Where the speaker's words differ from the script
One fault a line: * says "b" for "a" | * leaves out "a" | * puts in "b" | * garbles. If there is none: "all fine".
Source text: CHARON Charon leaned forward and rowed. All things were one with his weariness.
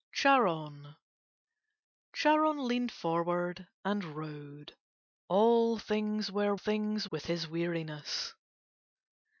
* says "things" for "one"